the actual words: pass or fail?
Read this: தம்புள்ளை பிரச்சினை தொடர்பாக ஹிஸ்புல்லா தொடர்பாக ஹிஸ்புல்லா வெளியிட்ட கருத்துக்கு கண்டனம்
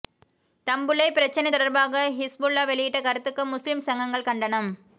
fail